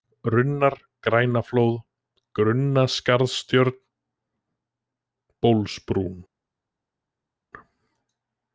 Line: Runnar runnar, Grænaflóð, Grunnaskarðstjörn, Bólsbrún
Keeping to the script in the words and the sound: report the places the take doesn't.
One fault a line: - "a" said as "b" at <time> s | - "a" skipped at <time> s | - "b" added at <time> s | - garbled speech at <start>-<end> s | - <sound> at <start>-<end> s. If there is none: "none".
- "runnar" skipped at 0.8 s